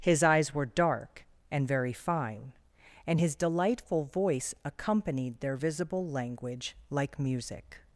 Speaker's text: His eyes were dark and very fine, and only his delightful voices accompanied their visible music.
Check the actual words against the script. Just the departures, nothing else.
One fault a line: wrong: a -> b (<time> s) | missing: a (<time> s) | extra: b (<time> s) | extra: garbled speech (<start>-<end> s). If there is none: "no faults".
missing: only (3.2 s)
wrong: voices -> voice (4.1 s)
extra: language like (6.1 s)